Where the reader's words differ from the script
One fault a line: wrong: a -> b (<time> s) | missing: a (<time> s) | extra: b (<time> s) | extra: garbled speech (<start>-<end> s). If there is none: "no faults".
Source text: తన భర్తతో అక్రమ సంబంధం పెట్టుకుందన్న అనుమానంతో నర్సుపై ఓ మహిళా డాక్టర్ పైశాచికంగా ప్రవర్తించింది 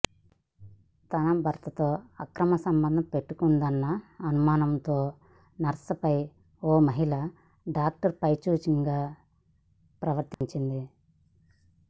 no faults